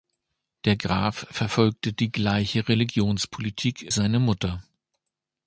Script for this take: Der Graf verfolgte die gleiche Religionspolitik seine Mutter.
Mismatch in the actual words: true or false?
false